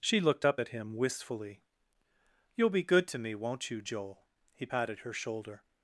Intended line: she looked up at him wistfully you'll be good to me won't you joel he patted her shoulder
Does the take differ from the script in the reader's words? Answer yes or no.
no